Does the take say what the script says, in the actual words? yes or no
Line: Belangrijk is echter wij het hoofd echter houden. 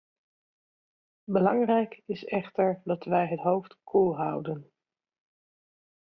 no